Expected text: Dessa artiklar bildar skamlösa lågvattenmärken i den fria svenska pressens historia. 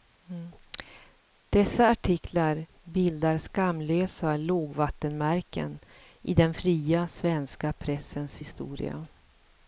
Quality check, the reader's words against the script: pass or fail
pass